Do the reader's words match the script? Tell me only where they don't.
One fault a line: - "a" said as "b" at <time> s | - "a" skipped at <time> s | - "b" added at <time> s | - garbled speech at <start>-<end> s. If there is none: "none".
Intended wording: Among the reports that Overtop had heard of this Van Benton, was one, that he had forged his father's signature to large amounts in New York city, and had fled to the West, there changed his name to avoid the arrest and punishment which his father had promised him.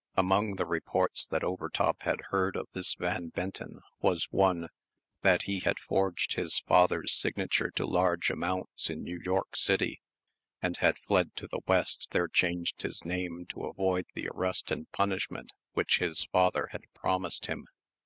none